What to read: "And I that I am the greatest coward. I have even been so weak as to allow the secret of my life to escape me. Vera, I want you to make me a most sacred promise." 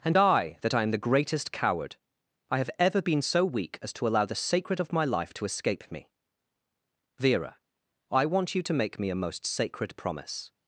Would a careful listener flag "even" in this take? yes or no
yes